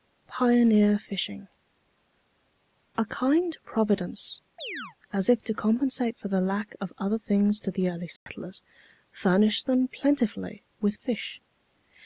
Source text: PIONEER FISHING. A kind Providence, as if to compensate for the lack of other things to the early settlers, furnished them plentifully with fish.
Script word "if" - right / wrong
right